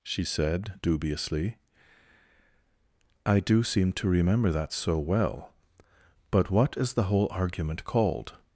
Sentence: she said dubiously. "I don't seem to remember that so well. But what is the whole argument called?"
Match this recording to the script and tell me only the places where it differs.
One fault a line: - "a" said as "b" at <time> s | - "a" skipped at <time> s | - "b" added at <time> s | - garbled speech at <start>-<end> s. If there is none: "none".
- "don't" said as "do" at 3.4 s